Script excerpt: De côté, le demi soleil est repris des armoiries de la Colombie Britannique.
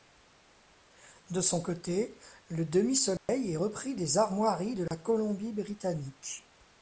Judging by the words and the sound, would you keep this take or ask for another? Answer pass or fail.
fail